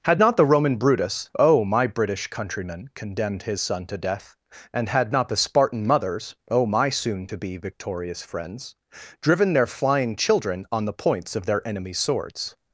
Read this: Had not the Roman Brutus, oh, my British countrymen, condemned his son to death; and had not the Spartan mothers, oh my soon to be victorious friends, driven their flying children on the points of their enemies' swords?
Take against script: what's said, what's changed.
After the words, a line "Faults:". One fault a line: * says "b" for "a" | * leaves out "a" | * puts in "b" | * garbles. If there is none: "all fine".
Had not the Roman Brutus, oh, my British countrymen, condemned his son to death; and had not the Spartan mothers, oh my soon to be victorious friends, driven their flying children on the points of their enemies' swords?
Faults:
all fine